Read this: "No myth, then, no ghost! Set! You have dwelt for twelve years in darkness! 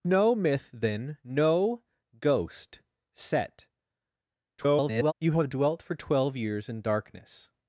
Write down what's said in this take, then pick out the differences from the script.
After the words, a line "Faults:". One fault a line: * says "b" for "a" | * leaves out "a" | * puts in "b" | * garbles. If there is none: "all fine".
"No myth, then, no ghost! Set! [garbled] You have dwelt for twelve years in darkness!
Faults:
* garbles